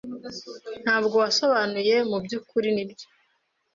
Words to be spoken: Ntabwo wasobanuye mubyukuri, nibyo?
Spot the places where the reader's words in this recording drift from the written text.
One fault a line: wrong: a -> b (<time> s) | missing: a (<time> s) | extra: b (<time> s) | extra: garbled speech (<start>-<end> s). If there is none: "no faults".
no faults